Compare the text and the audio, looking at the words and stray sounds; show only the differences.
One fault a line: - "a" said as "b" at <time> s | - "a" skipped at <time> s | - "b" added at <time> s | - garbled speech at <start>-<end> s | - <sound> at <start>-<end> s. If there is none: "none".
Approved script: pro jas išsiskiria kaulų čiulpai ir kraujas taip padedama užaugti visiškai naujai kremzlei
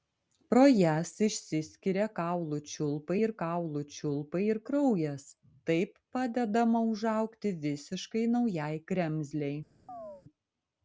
- "kaulų čiulpai ir" added at 3.4 s
- chirp at 9.9-10.2 s